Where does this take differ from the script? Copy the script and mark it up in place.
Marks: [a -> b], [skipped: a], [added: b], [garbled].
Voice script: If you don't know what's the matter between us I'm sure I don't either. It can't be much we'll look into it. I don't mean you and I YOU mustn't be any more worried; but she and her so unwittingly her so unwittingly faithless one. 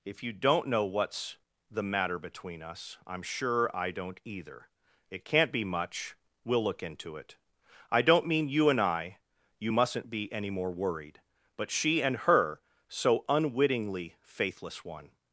If you don't know what's the matter between us I'm sure I don't either. It can't be much we'll look into it. I don't mean you and I YOU mustn't be any more worried; but she and her so unwittingly [skipped: her so unwittingly] faithless one.